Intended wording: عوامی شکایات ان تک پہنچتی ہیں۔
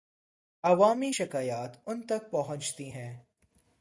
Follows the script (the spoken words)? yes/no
yes